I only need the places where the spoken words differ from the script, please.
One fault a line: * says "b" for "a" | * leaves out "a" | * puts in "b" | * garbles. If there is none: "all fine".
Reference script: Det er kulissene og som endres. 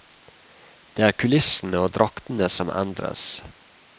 * puts in "draktene"